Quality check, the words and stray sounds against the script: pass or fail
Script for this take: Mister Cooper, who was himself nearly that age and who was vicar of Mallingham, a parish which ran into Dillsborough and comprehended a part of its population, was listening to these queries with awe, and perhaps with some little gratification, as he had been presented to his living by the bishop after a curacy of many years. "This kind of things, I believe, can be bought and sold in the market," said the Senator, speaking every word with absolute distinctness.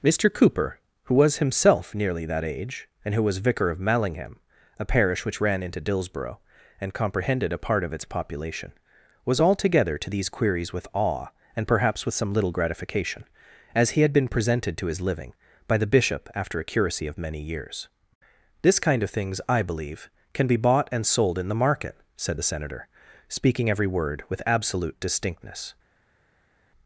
fail